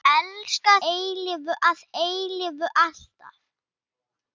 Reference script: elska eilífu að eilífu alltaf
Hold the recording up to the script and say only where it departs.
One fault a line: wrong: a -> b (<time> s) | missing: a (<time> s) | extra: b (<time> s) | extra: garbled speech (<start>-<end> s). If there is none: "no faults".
no faults